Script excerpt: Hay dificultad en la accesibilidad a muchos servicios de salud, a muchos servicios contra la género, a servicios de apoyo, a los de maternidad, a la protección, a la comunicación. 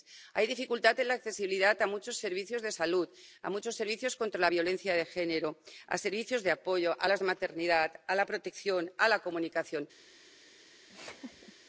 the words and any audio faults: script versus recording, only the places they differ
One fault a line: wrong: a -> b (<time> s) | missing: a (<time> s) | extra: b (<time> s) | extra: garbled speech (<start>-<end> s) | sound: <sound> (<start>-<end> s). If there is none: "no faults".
extra: violencia de (4.5 s)
sound: laugh (10.9-11.5 s)